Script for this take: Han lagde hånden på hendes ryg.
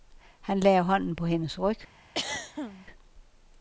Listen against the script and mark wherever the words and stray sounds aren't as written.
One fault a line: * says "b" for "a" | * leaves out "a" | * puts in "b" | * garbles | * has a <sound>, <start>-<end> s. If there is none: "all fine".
* has a throat clearing, 2.1-2.9 s